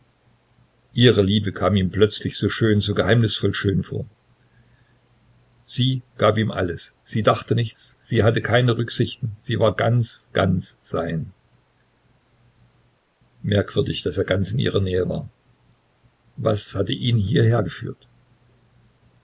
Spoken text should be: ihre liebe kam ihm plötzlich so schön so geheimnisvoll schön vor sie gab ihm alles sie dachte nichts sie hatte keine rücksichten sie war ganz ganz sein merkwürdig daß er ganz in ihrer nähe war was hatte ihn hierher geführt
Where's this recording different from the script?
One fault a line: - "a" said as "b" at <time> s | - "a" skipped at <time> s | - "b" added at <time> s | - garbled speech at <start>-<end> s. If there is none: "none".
none